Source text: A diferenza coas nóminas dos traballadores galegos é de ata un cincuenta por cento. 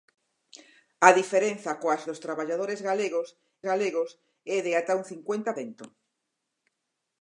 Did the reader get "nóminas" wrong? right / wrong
wrong